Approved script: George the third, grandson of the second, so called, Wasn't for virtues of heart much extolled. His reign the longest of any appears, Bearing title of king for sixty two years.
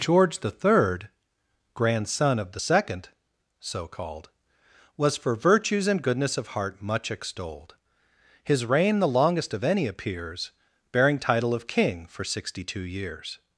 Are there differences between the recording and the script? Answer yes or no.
yes